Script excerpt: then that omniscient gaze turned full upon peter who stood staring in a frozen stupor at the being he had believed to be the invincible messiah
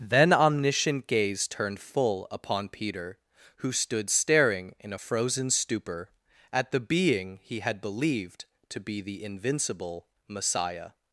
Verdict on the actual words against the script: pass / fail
fail